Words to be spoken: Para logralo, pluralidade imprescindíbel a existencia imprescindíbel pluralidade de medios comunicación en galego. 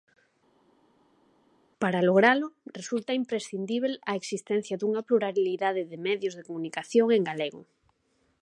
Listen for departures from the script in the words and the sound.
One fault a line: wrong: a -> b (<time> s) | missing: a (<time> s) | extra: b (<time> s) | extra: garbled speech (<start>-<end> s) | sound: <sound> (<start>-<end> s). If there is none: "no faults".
wrong: pluralidade -> resulta (2.8 s)
wrong: imprescindíbel -> dunha (4.8 s)
extra: de (6.3 s)